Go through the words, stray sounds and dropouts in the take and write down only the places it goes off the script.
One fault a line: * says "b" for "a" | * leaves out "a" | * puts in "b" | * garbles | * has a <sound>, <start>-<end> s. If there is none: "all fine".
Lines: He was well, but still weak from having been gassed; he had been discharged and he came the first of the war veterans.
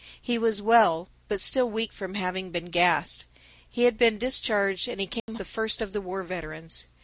* has a dropout, 5.2-5.3 s